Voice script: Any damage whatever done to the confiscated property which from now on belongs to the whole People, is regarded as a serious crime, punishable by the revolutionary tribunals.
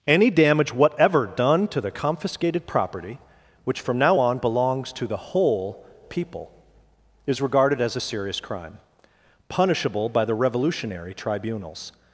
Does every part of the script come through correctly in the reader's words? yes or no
yes